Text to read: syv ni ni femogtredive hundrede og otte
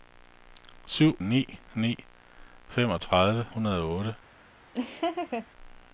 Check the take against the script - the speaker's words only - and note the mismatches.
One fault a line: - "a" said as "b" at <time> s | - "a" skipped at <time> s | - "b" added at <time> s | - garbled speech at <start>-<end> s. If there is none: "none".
none